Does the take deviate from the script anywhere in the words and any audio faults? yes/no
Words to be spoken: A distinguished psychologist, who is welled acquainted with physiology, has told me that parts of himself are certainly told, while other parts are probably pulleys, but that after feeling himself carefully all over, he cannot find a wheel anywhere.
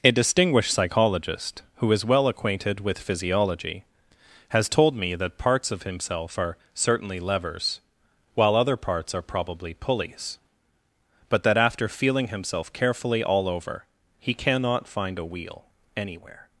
yes